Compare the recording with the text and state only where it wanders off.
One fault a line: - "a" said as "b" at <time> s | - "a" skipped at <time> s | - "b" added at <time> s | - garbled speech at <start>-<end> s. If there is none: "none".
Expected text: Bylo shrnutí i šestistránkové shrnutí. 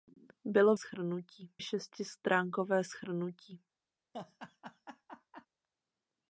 none